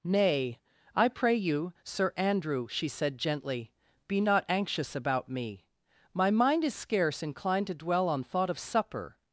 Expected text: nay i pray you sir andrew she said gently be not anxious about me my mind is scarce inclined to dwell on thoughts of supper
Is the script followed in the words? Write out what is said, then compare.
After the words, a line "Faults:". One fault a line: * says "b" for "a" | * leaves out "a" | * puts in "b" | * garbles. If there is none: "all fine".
nay i pray you sir andrew she said gently be not anxious about me my mind is scarce inclined to dwell on thought of supper
Faults:
* says "thought" for "thoughts"